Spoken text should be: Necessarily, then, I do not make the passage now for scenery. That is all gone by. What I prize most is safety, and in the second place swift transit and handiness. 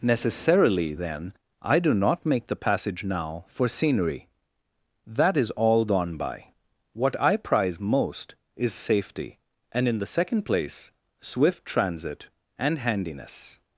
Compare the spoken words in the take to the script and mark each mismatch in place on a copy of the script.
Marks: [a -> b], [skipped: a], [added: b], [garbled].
Necessarily, then, I do not make the passage now for scenery. That is all gone by. What I prize most is safety, and in the second place swift transit and handiness.